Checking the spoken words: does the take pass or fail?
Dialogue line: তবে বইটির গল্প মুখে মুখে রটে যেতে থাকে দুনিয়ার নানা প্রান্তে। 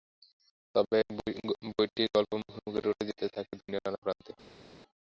pass